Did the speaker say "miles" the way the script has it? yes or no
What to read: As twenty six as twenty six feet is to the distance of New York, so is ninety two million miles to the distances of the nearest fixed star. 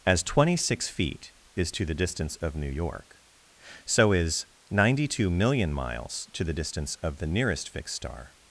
yes